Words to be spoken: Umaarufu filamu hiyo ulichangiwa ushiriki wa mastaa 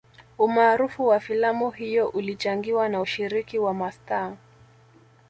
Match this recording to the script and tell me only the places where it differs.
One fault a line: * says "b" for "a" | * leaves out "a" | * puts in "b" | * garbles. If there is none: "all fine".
* puts in "wa"
* puts in "na"